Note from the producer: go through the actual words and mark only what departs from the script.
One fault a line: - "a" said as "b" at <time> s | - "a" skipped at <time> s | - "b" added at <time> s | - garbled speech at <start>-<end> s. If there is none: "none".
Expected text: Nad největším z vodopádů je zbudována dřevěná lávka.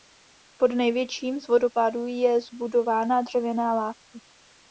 - "Nad" said as "Pod" at 0.6 s